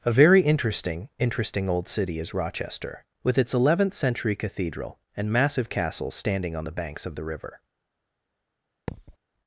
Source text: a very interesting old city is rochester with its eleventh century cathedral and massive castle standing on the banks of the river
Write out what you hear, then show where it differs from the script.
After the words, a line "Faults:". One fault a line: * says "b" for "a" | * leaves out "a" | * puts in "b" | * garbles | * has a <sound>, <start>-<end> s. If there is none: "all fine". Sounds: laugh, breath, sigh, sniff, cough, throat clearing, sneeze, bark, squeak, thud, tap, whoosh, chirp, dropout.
a very interesting interesting old city is rochester with its eleventh century cathedral and massive castle standing on the banks of the river
Faults:
* puts in "interesting"
* has a thud, 8.9-9.2 s